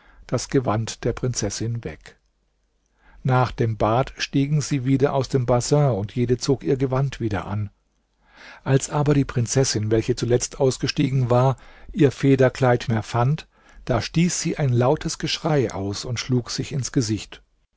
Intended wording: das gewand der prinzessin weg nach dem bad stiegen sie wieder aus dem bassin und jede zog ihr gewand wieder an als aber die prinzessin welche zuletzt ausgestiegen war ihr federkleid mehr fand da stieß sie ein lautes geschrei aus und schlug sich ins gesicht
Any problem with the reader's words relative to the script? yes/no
no